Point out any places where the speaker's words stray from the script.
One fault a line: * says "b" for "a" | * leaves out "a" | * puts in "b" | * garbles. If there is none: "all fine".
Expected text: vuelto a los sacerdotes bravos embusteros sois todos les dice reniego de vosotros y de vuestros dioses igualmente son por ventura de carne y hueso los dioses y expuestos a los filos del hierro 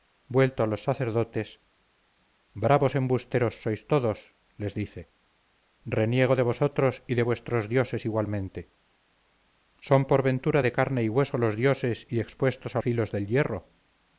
* leaves out "los"